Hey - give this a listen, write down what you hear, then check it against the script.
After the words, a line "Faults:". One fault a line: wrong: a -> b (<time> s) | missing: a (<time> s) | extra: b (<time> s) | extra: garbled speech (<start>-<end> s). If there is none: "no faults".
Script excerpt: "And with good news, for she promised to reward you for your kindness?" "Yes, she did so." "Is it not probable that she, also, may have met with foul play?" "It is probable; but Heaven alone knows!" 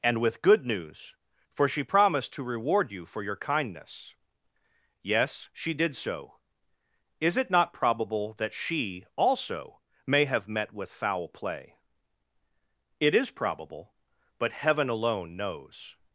"And with good news, for she promised to reward you for your kindness?" "Yes, she did so." "Is it not probable that she, also, may have met with foul play?" "It is probable; but Heaven alone knows!"
Faults:
no faults